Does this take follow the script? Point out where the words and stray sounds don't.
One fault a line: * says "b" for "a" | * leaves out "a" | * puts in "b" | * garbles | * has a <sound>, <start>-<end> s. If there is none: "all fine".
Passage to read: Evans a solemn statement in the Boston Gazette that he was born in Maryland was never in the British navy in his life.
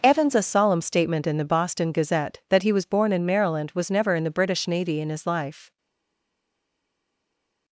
all fine